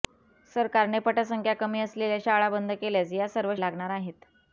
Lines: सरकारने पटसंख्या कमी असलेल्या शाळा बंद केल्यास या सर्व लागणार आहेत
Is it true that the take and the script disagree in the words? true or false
false